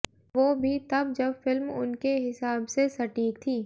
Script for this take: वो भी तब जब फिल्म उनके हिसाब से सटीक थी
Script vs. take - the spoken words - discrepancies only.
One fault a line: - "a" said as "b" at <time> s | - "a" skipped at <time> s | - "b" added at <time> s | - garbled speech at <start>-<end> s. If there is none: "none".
none